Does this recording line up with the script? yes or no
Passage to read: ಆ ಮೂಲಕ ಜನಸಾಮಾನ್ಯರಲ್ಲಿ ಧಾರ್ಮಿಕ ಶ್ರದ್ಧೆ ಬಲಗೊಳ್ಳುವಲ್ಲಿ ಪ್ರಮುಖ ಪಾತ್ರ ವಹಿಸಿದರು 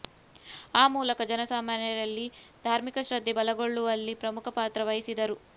yes